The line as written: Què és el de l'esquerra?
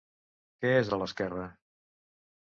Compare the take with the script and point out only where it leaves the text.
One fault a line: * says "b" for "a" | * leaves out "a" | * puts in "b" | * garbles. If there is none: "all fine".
* leaves out "el"